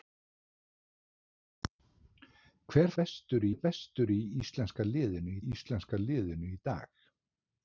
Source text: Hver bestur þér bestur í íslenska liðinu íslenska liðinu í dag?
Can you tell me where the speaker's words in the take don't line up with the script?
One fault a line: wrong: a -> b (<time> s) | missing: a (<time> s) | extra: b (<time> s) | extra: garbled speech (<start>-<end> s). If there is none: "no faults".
no faults